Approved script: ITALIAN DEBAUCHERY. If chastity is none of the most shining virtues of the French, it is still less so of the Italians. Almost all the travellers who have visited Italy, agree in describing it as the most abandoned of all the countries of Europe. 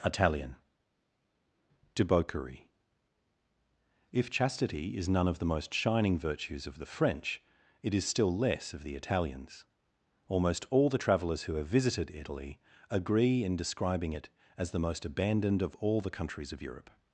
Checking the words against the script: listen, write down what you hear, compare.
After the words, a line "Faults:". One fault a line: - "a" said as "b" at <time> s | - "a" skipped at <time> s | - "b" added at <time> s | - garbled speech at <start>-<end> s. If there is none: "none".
ITALIAN DEBAUCHERY. If chastity is none of the most shining virtues of the French, it is still less of the Italians. Almost all the travellers who have visited Italy, agree in describing it as the most abandoned of all the countries of Europe.
Faults:
- "so" skipped at 8.7 s